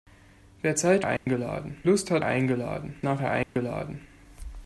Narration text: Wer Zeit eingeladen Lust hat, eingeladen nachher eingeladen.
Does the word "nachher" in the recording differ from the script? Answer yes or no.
no